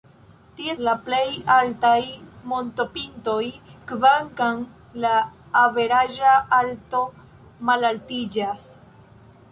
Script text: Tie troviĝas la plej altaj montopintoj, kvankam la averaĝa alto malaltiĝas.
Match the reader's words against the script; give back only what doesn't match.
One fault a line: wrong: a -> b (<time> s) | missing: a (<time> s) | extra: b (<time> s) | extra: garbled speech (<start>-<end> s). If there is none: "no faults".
missing: troviĝas (0.7 s)